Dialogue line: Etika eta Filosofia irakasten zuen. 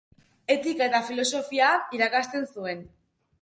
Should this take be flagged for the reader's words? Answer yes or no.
no